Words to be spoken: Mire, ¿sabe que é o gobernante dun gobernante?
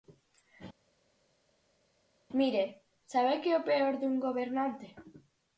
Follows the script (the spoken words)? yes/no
no